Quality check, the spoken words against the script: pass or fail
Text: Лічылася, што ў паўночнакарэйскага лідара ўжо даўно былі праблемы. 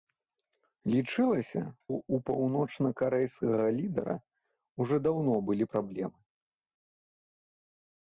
fail